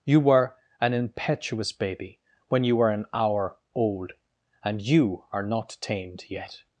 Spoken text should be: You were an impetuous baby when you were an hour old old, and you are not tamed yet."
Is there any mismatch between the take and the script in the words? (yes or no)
yes